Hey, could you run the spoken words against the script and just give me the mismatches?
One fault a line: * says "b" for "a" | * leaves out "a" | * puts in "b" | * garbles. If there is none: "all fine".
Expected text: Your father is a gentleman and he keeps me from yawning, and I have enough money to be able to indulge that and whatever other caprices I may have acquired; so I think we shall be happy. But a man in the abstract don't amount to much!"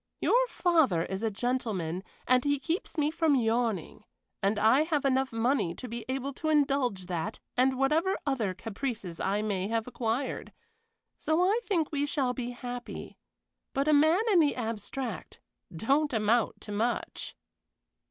all fine